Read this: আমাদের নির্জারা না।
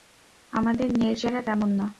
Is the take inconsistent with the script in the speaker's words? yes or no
yes